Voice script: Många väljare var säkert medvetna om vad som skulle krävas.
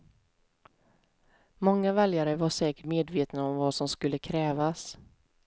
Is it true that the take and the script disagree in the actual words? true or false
false